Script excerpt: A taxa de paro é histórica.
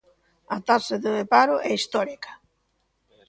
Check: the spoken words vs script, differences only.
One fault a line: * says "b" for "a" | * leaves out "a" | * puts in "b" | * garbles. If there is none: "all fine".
all fine